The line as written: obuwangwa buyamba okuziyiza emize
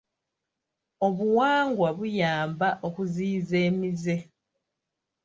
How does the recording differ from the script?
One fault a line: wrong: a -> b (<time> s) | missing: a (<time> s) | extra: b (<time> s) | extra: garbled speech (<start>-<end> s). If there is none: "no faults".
no faults